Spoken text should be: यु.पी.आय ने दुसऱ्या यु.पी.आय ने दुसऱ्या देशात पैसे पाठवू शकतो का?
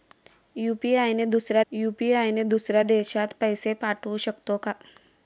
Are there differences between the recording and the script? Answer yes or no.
no